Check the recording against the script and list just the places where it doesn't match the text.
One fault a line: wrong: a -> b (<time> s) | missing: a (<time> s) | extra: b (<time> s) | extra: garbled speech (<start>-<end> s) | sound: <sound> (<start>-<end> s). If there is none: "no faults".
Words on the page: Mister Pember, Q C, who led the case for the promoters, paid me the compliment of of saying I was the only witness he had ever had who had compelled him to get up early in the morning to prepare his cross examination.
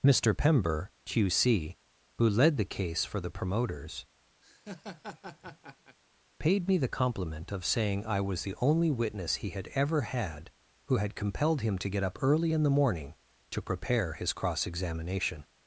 sound: laugh (4.4-6.0 s)
missing: of (7.6 s)